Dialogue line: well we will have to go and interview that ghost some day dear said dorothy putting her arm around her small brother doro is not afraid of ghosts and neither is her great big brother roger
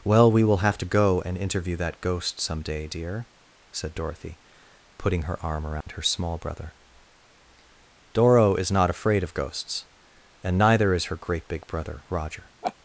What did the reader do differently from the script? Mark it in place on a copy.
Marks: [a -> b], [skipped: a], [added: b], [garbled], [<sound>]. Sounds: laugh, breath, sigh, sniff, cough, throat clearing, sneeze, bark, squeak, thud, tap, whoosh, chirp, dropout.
well we will have to go and interview that ghost some day dear said dorothy putting her arm around [dropout] her small brother doro is not afraid of ghosts and neither is her great big brother roger [laugh]